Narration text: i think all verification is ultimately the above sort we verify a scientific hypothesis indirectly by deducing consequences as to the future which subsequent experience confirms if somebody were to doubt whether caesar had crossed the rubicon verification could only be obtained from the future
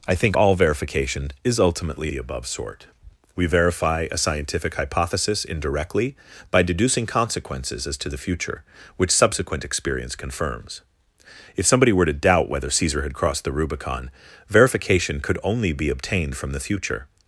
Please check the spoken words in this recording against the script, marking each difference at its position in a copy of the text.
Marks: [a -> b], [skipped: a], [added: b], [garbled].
i think all verification is ultimately the above sort we verify a scientific hypothesis indirectly by deducing consequences as to the future which subsequent experience confirms if somebody were to doubt whether caesar had crossed the rubicon verification could only be obtained from the future